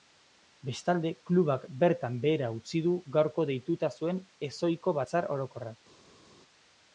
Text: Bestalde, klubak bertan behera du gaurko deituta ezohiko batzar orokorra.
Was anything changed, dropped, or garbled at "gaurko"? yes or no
no